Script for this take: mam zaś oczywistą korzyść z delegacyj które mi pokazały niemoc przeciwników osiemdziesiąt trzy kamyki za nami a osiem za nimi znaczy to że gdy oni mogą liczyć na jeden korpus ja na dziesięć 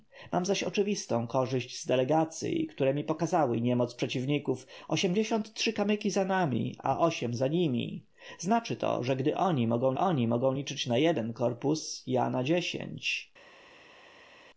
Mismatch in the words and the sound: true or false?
true